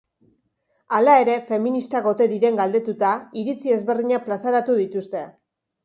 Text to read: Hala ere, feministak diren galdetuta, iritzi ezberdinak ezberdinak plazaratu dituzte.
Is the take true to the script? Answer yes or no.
no